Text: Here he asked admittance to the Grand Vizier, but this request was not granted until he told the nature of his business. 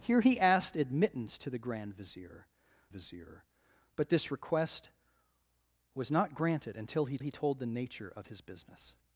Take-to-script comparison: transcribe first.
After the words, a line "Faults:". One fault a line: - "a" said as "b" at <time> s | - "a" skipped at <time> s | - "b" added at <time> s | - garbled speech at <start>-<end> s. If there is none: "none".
Here he asked admittance to the Grand Vizier Vizier, but this request was not granted until he he told the nature of his business.
Faults:
- "Vizier" added at 2.9 s
- "he" added at 7.2 s